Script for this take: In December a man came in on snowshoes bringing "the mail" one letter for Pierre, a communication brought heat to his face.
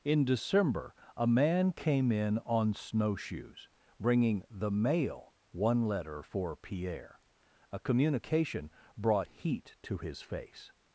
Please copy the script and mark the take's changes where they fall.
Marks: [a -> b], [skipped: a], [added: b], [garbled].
In December a man came in on snowshoes bringing "the mail" one letter for Pierre, a communication brought heat to his face.